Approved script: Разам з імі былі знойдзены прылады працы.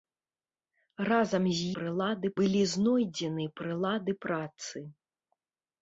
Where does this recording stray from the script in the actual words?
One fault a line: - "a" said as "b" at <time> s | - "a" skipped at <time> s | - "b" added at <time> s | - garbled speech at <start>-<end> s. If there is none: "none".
- "імі" said as "прылады" at 1.8 s